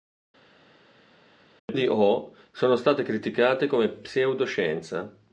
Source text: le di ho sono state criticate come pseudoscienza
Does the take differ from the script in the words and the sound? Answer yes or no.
no